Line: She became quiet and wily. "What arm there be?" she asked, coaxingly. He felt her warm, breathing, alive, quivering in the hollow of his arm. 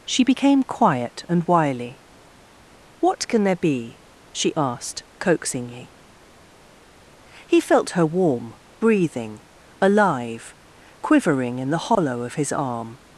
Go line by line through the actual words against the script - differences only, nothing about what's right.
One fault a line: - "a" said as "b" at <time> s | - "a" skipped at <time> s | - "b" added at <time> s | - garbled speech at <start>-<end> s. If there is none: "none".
- "arm" said as "can" at 3.3 s